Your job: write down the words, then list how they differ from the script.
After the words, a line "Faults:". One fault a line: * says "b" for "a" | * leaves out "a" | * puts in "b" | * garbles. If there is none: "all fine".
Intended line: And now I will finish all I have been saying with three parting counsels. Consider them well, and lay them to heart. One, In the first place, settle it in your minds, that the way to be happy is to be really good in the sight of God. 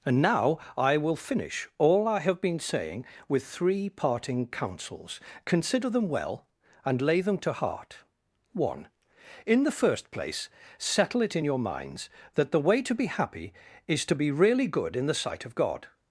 And now I will finish all I have been saying with three parting counsels. Consider them well, and lay them to heart. One, In the first place, settle it in your minds, that the way to be happy is to be really good in the sight of God.
Faults:
all fine